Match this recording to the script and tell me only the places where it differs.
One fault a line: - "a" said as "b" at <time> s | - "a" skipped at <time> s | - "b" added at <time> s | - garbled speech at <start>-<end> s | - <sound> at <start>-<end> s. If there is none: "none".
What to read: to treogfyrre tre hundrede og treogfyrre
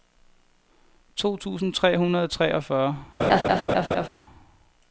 - "treogfyrre" said as "tusind" at 1.4 s
- laugh at 3.2-4.1 s